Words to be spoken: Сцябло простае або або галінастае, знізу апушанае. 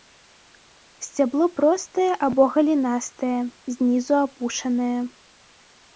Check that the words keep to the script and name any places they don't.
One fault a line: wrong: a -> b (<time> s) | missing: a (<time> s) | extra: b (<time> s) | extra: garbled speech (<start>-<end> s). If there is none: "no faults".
missing: або (2.4 s)